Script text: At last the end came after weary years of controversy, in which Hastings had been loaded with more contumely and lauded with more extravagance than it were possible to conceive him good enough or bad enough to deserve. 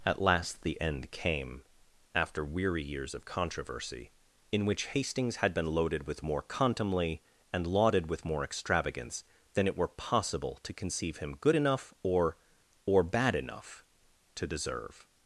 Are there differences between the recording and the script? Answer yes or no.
yes